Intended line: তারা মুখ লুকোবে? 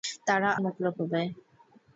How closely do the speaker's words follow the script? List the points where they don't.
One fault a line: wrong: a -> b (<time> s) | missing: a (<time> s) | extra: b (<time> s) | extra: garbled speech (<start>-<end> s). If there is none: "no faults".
no faults